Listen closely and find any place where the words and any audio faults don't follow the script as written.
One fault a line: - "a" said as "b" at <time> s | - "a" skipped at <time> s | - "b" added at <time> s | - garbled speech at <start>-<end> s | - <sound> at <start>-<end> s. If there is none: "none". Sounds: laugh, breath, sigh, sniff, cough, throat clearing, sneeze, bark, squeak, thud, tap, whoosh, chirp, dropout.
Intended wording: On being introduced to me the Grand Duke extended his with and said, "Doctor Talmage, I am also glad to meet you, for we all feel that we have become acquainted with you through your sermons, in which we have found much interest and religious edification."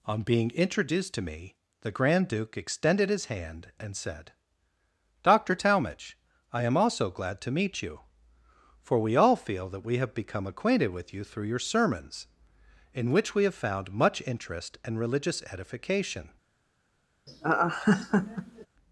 - "with" said as "hand" at 3.2 s
- laugh at 17.3-18.7 s